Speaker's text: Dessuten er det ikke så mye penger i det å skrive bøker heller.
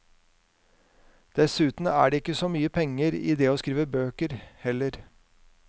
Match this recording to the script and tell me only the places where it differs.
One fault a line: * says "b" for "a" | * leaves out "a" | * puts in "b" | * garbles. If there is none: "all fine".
all fine